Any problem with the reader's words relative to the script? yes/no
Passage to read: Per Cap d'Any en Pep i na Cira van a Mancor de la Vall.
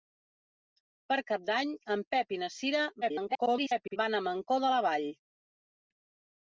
yes